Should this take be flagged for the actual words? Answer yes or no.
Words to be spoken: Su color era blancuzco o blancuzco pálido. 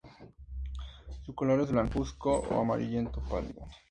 yes